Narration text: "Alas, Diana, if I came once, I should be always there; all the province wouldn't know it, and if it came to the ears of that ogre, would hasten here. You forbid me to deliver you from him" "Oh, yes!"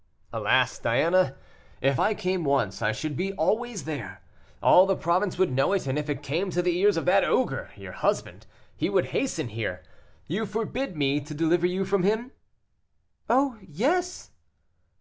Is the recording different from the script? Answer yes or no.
yes